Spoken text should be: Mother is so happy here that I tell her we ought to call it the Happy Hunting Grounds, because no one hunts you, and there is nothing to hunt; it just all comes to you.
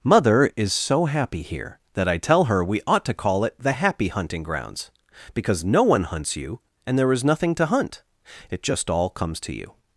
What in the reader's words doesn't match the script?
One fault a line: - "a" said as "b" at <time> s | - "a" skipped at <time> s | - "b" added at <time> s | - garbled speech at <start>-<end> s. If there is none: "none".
none